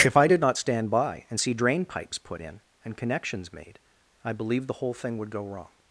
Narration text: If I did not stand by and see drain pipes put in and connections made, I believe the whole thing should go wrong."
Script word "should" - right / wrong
wrong